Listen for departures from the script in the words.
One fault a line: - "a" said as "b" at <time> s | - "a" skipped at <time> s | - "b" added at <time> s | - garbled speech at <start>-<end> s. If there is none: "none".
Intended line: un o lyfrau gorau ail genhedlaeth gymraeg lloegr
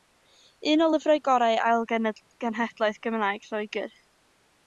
none